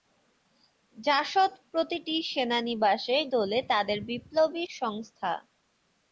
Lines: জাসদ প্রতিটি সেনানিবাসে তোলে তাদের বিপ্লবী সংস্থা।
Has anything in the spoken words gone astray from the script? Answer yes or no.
no